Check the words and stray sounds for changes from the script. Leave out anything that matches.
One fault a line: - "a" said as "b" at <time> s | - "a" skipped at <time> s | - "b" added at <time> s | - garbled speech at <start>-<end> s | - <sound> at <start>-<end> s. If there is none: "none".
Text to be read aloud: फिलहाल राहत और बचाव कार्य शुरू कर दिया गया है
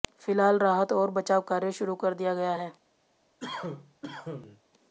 - cough at 3.4-4.6 s